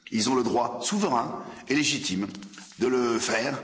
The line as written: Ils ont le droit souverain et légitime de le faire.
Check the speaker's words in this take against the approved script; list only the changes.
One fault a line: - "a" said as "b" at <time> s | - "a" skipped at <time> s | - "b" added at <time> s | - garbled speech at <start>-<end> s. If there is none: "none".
none